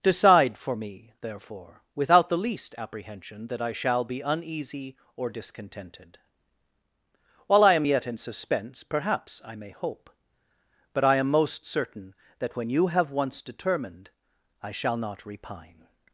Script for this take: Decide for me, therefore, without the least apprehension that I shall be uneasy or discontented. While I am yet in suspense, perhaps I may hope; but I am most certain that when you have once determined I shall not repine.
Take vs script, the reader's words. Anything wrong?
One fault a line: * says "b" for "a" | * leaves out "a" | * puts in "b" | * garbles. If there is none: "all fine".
all fine